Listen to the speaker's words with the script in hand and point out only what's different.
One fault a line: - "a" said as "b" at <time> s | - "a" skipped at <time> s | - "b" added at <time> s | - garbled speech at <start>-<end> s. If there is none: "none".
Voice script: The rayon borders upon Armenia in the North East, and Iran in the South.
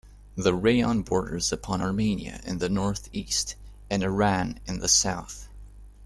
none